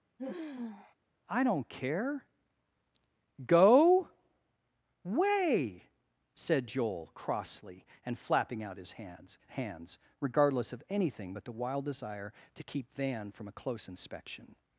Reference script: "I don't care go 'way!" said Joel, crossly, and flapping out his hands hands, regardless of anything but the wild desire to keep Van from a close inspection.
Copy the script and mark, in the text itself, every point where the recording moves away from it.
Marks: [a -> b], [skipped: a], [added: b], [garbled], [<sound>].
[sigh] "I don't care go 'way!" said Joel, crossly, and flapping out his hands hands, regardless of anything but the wild desire to keep Van from a close inspection.